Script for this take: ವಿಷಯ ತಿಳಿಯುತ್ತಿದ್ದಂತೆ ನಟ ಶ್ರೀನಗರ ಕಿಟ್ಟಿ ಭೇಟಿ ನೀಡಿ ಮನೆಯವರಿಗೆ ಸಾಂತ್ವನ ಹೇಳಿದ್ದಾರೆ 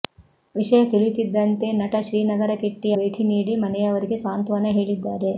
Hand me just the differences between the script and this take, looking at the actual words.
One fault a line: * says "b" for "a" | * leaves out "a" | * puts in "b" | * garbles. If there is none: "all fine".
all fine